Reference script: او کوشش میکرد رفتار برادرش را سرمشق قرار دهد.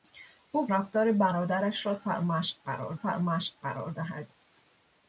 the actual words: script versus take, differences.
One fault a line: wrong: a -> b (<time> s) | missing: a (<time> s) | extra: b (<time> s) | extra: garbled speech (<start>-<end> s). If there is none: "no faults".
missing: کوشش میکرد (0.7 s)
extra: سرمشق قرار (2.9 s)